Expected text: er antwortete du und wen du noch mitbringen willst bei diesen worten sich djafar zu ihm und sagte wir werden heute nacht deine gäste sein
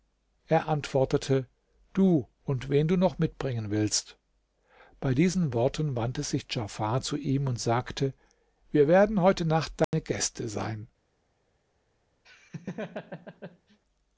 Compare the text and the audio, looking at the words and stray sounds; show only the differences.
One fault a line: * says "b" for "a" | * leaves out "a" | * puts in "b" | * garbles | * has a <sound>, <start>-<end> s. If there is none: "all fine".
* puts in "wandte"
* has a dropout, 9.8-9.9 s
* has a laugh, 12.2-13.8 s